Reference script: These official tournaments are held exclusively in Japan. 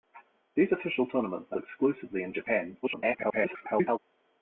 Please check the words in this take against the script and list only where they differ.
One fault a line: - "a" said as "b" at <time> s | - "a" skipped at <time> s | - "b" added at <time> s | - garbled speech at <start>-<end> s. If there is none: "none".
- "held" skipped at 1.6 s
- garbled speech at 2.8-4.0 s